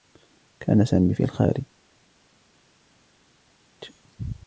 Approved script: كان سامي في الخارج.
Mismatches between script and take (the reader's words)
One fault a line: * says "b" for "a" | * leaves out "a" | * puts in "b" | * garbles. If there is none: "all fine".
all fine